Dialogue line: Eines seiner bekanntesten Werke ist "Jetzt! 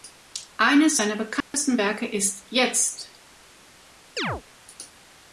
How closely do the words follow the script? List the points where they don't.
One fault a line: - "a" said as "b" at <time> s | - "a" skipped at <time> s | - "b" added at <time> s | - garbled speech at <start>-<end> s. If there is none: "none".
none